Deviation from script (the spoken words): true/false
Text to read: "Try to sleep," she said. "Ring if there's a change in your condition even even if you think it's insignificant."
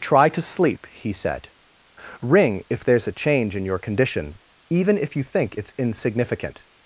true